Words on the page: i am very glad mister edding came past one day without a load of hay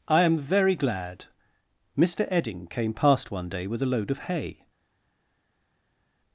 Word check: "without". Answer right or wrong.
wrong